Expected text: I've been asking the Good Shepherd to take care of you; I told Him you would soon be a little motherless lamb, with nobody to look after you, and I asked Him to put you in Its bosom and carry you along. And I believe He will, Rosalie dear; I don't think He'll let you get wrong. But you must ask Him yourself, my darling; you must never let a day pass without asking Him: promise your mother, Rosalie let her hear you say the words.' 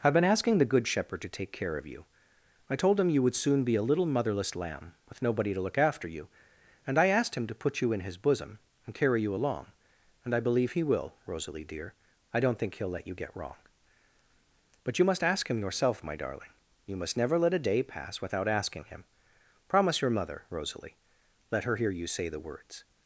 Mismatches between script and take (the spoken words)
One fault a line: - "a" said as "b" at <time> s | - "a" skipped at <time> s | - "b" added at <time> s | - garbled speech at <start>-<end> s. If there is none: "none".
- "Its" said as "His" at 8.0 s